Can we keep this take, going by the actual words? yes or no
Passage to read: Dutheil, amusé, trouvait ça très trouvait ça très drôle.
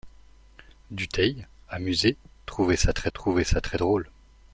yes